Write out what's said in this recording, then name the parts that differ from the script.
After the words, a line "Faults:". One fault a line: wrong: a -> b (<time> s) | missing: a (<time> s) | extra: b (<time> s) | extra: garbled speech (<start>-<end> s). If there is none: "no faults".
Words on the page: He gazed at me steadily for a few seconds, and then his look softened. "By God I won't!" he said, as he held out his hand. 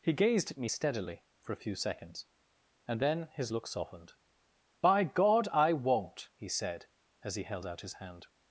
He gazed at me steadily for a few seconds, and then his look softened. "By God I won't!" he said, as he held out his hand.
Faults:
no faults